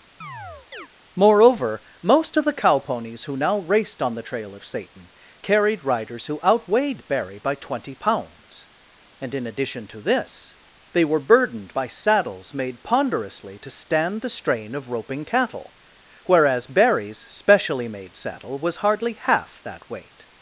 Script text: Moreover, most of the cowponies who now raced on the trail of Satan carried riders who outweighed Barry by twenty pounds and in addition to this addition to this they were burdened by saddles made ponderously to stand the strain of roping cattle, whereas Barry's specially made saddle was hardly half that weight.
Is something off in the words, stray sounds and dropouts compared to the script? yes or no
yes